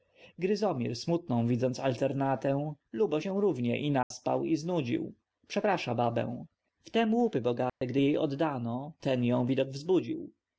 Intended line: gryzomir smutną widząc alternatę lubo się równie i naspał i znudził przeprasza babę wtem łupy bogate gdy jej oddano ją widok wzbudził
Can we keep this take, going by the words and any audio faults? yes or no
no